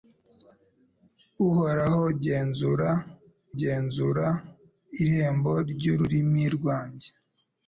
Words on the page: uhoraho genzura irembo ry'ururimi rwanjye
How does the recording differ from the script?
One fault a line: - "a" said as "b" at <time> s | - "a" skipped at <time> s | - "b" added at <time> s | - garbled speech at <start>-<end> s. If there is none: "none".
- "genzura" added at 3.6 s